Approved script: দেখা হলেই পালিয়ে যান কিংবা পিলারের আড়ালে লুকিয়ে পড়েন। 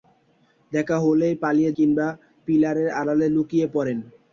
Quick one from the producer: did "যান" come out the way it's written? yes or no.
no